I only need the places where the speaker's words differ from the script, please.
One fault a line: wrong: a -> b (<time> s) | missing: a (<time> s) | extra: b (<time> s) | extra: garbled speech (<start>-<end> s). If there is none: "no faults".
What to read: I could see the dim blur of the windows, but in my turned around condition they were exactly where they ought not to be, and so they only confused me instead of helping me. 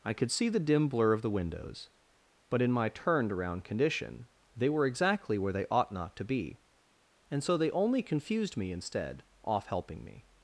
wrong: of -> off (9.4 s)